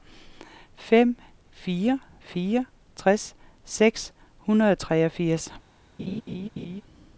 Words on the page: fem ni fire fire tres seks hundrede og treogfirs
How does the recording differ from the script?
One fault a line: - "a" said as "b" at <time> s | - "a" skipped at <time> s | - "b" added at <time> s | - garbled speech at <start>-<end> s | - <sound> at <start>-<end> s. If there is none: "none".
- "ni" skipped at 1.2 s
- laugh at 6.0-6.8 s